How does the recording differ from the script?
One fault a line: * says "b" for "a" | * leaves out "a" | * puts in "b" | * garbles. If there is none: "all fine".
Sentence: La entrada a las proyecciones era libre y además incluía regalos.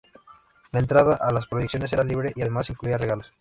all fine